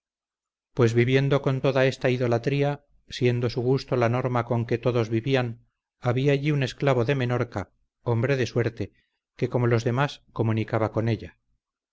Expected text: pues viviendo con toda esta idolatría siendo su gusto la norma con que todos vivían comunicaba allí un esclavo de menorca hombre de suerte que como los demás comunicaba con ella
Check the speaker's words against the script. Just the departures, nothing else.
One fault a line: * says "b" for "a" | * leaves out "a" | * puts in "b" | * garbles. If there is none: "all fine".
* says "había" for "comunicaba"